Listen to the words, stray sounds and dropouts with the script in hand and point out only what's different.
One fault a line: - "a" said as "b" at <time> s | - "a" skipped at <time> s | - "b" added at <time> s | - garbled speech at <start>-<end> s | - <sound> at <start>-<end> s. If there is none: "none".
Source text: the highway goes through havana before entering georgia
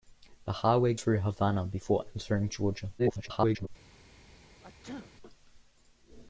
- "goes" skipped at 0.9 s
- garbled speech at 3.0-3.7 s
- sneeze at 4.6-5.1 s